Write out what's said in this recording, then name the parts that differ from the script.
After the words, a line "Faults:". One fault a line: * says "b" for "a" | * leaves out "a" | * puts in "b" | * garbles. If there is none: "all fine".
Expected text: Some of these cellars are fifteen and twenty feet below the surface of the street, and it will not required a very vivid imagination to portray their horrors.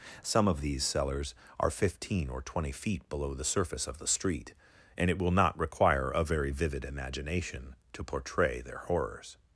Some of these cellars are fifteen or twenty feet below the surface of the street, and it will not require a very vivid imagination to portray their horrors.
Faults:
* says "or" for "and"
* says "require" for "required"